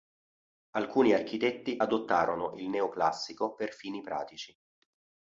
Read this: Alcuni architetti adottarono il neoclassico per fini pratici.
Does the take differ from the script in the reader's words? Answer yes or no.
no